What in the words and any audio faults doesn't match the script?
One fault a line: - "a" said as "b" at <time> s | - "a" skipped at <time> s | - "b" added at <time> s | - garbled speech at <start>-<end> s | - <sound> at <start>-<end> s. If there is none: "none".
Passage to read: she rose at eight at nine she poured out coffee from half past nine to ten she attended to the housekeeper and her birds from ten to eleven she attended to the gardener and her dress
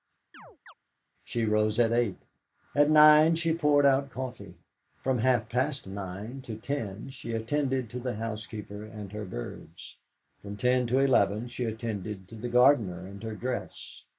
- chirp at 0.3-0.7 s